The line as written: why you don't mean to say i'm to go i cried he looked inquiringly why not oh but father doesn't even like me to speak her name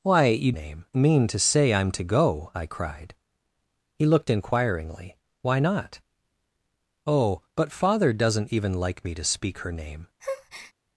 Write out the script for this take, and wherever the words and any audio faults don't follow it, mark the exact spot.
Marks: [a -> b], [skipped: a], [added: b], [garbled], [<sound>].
why you [don't -> name] mean to say i'm to go i cried he looked inquiringly why not oh but father doesn't even like me to speak her name [breath]